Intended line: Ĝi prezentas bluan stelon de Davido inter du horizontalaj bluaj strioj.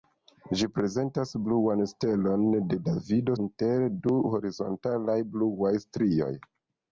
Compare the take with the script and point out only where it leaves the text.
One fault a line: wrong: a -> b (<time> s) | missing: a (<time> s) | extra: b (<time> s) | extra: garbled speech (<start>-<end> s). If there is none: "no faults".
no faults